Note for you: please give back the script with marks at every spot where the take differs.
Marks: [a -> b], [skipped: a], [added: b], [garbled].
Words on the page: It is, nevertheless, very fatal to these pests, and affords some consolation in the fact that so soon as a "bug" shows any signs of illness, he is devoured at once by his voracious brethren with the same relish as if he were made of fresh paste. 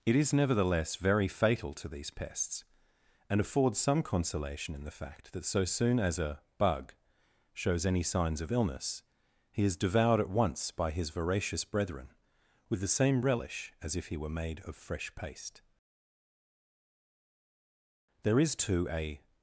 It is, nevertheless, very fatal to these pests, and affords some consolation in the fact that so soon as a "bug" shows any signs of illness, he is devoured at once by his voracious brethren with the same relish as if he were made of fresh paste. [added: There is too a]